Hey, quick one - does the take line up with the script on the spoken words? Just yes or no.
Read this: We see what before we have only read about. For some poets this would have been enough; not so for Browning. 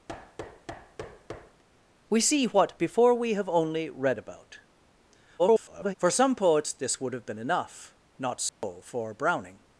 no